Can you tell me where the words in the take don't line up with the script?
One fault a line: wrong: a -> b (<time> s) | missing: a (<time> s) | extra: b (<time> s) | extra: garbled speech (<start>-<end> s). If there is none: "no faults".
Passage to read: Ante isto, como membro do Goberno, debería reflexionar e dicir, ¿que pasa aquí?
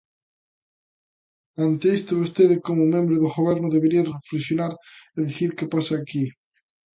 extra: vostede (2.2 s)